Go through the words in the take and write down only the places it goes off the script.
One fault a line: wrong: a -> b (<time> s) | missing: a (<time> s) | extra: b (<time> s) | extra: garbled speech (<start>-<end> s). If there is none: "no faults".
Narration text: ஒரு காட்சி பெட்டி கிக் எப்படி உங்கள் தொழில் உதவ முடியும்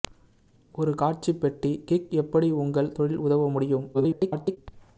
extra: garbled speech (3.9-4.6 s)